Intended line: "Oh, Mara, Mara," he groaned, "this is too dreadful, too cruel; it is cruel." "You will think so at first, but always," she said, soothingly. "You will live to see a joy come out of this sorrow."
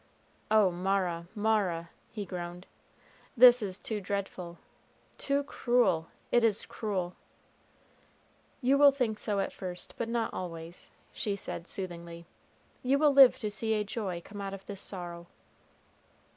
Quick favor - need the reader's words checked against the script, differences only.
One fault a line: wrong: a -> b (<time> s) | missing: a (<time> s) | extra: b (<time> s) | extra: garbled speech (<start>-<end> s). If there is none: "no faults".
extra: not (10.1 s)